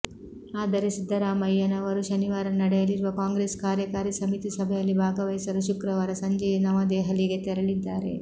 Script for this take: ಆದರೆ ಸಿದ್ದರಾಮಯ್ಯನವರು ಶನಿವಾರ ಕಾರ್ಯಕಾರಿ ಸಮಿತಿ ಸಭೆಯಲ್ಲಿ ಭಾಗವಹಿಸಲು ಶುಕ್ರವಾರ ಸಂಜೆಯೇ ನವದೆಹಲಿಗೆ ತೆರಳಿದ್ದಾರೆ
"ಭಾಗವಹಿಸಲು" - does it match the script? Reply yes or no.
yes